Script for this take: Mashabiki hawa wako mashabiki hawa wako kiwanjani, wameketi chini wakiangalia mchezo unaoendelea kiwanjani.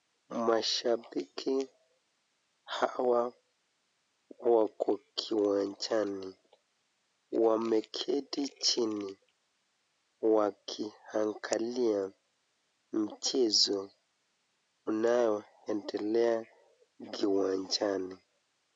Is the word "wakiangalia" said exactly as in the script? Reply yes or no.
yes